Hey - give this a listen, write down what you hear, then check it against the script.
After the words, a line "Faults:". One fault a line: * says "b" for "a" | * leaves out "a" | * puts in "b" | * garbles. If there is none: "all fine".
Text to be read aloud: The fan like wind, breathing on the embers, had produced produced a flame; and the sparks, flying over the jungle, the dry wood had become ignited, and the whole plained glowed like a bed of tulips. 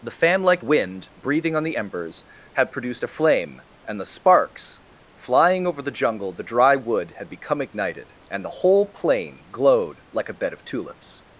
The fan like wind, breathing on the embers, had produced a flame; and the sparks, flying over the jungle, the dry wood had become ignited, and the whole plain glowed like a bed of tulips.
Faults:
* leaves out "produced"
* says "plain" for "plained"